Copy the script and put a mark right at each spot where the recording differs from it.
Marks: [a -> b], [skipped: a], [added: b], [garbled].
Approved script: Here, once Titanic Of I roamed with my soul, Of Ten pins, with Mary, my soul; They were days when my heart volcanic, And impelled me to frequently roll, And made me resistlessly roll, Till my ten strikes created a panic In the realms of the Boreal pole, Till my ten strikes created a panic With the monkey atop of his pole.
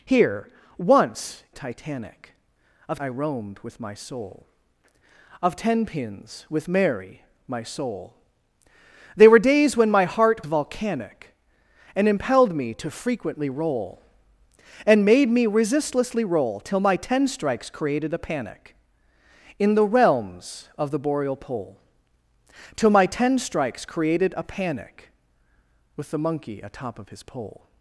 Here, once Titanic Of I roamed with my soul, Of Ten pins, with Mary, my soul; They were days when my heart volcanic, And impelled me to frequently roll, And made me resistlessly roll, Till my ten strikes created a panic In the realms of the Boreal pole, Till my ten strikes created a panic With the monkey atop of his pole.